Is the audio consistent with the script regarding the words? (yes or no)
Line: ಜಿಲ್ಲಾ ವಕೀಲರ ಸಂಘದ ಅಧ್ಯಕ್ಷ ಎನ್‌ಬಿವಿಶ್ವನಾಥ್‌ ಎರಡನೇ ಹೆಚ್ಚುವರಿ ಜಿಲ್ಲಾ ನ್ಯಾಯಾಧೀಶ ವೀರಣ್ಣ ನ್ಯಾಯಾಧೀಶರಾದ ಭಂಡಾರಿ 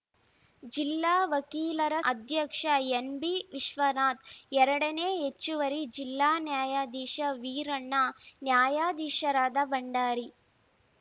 no